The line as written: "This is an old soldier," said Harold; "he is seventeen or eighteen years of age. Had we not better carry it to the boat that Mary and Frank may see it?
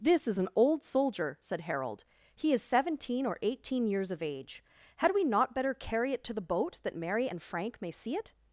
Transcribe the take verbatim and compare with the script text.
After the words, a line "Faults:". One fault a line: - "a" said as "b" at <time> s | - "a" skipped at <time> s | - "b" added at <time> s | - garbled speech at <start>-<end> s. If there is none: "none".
"This is an old soldier," said Harold; "he is seventeen or eighteen years of age. Had we not better carry it to the boat that Mary and Frank may see it?
Faults:
none